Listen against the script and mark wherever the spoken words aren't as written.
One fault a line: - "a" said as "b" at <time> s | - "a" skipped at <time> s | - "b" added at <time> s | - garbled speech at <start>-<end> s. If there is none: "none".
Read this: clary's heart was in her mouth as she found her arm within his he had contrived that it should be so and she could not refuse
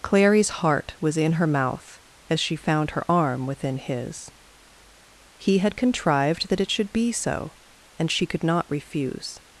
none